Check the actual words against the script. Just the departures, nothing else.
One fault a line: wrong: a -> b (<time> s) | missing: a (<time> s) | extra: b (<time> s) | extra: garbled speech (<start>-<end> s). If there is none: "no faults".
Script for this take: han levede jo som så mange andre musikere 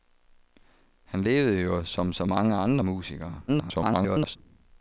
extra: garbled speech (3.5-4.4 s)